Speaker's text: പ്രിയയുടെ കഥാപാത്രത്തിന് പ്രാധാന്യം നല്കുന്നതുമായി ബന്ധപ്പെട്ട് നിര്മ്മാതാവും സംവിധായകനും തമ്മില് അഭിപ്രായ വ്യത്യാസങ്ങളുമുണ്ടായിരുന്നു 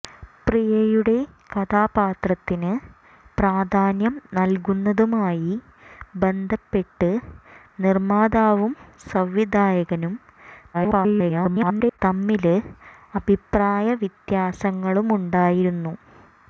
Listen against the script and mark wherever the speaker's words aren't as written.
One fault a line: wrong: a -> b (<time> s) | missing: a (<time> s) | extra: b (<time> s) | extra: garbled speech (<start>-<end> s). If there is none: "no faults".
extra: garbled speech (10.7-12.0 s)